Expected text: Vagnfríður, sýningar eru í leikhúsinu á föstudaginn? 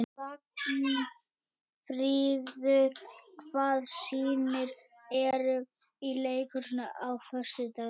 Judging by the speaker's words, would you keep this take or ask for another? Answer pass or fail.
fail